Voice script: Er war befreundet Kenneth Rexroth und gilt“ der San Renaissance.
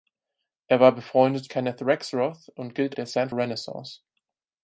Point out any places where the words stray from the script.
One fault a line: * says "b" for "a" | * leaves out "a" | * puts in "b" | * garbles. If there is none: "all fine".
all fine